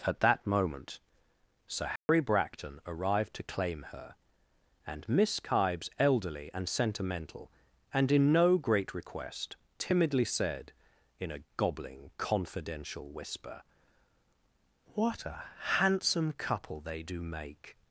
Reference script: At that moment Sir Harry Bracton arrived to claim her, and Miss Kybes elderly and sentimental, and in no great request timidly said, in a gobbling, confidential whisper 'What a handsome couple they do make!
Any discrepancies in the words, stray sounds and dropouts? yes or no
yes